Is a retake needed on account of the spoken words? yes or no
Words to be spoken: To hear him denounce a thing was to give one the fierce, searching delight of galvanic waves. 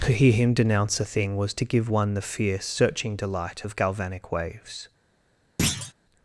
no